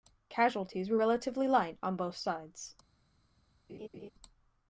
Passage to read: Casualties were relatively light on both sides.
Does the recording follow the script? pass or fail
pass